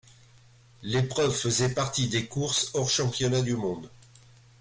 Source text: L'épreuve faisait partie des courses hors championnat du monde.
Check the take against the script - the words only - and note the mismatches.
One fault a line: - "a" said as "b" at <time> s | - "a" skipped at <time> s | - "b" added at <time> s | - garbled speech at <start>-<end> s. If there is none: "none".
none